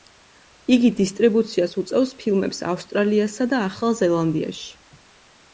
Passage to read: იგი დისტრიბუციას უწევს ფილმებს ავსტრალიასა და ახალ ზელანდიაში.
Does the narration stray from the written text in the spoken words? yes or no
no